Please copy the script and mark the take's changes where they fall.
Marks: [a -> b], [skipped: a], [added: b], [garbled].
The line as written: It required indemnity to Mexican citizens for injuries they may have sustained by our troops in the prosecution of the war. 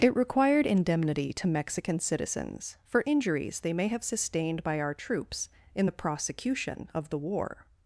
It required indemnity to Mexican citizens for injuries they may have sustained by our troops in the prosecution of the war.